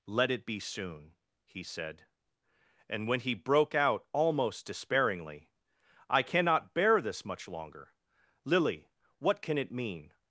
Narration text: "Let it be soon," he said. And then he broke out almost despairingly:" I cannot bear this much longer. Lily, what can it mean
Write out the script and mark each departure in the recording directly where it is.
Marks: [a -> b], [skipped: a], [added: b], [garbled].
"Let it be soon," he said. And [then -> when] he broke out almost despairingly:" I cannot bear this much longer. Lily, what can it mean